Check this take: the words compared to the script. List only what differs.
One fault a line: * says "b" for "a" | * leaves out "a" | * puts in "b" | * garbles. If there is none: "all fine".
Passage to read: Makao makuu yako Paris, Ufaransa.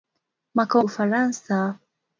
* leaves out "makuu yako Paris"